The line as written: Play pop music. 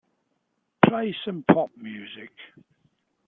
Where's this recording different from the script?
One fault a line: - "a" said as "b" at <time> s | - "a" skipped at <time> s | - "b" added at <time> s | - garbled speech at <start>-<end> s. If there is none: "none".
- "some" added at 1.2 s